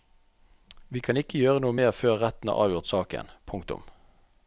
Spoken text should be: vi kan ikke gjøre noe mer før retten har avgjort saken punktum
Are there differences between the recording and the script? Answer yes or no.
no